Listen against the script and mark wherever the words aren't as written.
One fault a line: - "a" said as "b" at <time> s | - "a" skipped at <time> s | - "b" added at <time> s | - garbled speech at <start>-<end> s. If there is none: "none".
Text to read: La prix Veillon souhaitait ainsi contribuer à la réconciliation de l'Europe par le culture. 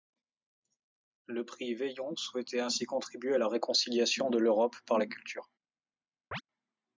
- "La" said as "Le" at 1.3 s
- "le" said as "la" at 5.0 s